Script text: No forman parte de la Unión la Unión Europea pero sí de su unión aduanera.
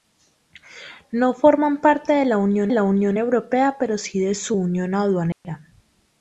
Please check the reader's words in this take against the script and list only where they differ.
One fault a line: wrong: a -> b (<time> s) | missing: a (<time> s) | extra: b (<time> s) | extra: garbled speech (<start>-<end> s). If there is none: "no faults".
no faults